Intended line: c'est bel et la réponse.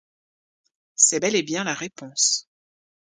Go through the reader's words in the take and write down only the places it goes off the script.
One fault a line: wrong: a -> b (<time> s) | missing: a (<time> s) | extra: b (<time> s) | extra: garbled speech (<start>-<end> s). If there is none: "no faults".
extra: bien (1.4 s)